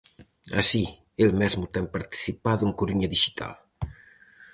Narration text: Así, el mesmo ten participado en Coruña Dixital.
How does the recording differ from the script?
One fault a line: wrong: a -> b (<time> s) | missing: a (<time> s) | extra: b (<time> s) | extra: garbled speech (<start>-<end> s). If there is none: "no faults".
no faults